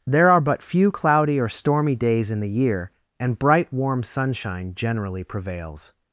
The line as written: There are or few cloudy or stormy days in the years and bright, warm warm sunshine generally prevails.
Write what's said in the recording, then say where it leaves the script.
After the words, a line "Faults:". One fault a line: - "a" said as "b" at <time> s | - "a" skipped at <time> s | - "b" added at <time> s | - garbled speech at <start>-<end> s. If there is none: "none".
There are but few cloudy or stormy days in the year and bright, warm sunshine generally prevails.
Faults:
- "or" said as "but" at 0.4 s
- "years" said as "year" at 2.5 s
- "warm" skipped at 4.0 s